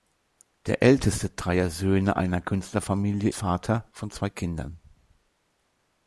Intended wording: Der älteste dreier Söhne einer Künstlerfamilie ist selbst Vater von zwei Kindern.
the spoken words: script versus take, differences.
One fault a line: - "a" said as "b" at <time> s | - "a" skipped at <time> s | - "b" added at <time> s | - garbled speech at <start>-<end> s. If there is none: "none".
- "ist selbst" skipped at 3.3 s